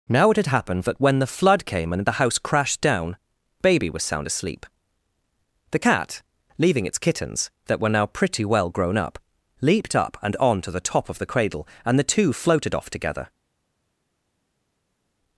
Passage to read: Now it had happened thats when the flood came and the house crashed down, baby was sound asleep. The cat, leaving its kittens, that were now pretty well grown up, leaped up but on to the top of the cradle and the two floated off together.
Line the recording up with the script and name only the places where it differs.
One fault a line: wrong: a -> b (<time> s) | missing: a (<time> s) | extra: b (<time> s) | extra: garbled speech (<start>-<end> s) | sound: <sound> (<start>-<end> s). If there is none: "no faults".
wrong: thats -> that (0.8 s)
wrong: but -> and (10.2 s)